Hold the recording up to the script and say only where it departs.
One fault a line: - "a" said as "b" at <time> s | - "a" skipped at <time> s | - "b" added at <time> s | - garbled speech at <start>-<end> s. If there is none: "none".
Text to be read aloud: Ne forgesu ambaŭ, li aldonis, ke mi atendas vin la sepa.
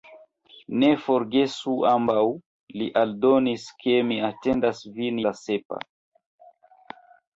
none